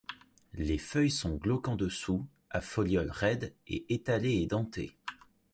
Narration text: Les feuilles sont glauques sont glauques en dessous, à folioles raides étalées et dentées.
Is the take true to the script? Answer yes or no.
no